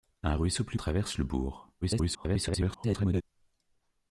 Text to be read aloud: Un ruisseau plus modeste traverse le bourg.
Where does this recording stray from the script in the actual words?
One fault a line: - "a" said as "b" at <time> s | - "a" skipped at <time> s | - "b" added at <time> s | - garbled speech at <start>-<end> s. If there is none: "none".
- "modeste" skipped at 0.8 s
- garbled speech at 1.8-3.2 s